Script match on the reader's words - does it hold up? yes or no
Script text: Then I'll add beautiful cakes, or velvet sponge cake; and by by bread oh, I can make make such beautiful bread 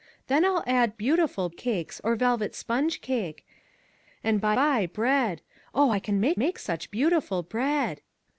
yes